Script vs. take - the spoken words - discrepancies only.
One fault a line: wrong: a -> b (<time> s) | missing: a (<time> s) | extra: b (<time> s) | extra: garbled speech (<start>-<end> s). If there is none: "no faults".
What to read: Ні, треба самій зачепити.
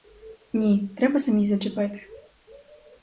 no faults